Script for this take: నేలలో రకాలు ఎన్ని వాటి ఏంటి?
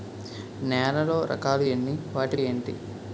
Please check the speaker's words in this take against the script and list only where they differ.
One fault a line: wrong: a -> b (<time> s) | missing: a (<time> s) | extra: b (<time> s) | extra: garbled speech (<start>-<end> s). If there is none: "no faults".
no faults